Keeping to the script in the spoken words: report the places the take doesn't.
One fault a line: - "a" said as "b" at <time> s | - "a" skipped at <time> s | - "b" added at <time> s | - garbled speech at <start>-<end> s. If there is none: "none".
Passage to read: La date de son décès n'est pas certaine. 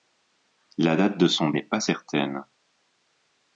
- "décès" skipped at 1.5 s